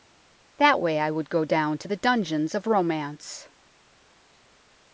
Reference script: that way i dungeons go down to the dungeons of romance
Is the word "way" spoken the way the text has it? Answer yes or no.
yes